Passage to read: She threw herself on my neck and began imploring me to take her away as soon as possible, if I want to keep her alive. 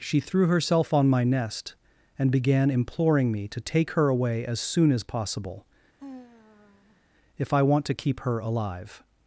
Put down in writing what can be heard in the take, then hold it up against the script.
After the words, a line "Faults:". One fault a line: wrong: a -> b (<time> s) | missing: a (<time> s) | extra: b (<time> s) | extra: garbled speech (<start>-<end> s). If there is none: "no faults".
She threw herself on my nest and began imploring me to take her away as soon as possible, if I want to keep her alive.
Faults:
wrong: neck -> nest (1.2 s)